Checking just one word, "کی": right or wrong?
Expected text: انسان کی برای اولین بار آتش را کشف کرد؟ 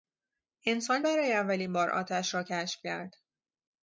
wrong